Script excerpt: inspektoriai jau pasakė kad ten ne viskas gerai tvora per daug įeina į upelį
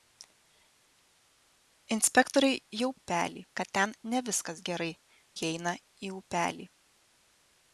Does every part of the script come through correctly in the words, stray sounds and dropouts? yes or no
no